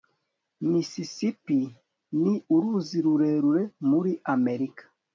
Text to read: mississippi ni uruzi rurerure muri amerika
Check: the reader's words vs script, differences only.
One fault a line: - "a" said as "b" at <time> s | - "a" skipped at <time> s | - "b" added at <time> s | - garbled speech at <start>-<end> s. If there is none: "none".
none